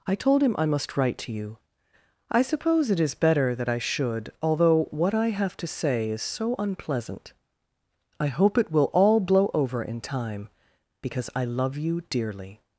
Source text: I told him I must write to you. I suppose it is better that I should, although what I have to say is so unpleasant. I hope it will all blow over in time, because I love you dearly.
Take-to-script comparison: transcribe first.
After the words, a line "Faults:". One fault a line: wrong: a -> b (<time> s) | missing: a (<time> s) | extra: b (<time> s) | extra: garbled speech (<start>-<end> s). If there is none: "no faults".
I told him I must write to you. I suppose it is better that I should, although what I have to say is so unpleasant. I hope it will all blow over in time, because I love you dearly.
Faults:
no faults